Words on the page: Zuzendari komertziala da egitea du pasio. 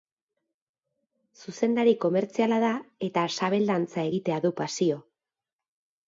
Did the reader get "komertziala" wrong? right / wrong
right